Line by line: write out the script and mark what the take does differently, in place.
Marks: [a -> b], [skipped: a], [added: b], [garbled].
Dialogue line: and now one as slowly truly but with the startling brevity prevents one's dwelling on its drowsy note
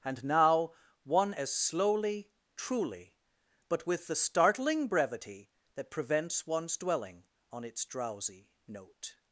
and now one as slowly truly but with the startling brevity [added: that] prevents one's dwelling on its drowsy note